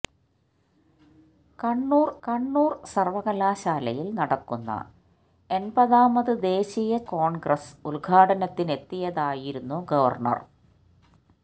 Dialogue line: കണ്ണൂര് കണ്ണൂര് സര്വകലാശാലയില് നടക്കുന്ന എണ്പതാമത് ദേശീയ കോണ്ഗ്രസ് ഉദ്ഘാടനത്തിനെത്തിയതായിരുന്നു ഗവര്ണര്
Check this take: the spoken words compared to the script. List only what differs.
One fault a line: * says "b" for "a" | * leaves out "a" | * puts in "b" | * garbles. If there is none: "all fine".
all fine